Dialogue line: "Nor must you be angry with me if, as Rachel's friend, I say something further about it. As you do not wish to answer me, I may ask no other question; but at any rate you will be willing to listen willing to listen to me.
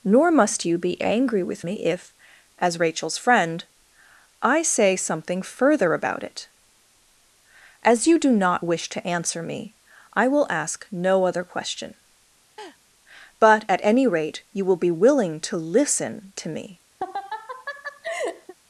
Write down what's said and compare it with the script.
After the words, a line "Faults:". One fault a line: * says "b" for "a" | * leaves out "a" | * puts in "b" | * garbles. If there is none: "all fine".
"Nor must you be angry with me if, as Rachel's friend, I say something further about it. As you do not wish to answer me, I will ask no other question; but at any rate you will be willing to listen to me.
Faults:
* says "will" for "may"
* leaves out "willing to listen"